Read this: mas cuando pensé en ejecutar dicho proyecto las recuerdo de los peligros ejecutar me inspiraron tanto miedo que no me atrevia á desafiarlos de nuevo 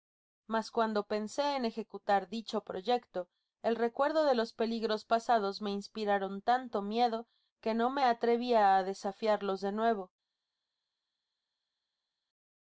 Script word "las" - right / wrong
wrong